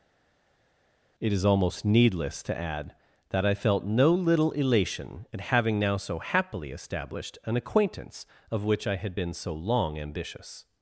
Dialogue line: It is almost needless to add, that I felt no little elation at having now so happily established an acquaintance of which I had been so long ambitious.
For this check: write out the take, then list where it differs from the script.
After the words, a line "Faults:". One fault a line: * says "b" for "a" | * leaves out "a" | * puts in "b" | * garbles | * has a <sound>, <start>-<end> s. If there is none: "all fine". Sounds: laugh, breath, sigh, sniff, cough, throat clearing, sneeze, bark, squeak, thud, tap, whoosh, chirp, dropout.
It is almost needless to add, that I felt no little elation at having now so happily established an acquaintance of which I had been so long ambitious.
Faults:
all fine